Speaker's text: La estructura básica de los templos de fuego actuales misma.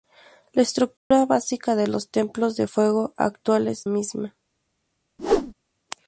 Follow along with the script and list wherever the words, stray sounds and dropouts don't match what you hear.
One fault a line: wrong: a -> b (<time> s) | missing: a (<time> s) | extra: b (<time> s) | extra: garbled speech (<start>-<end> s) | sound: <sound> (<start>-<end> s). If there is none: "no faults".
sound: dropout (1.0-1.1 s)
sound: whoosh (5.2-5.5 s)